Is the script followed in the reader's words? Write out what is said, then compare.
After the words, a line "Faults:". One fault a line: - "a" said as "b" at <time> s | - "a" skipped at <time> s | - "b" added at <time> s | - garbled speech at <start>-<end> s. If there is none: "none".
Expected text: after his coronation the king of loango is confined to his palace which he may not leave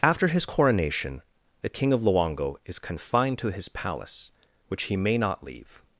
after his coronation the king of loango is confined to his palace which he may not leave
Faults:
none